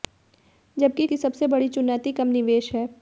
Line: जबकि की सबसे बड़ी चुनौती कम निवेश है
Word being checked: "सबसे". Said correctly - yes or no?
yes